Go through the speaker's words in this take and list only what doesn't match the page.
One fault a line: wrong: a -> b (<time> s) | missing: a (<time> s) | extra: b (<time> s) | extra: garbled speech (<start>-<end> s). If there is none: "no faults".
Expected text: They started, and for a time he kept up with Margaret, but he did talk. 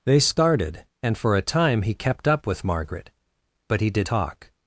no faults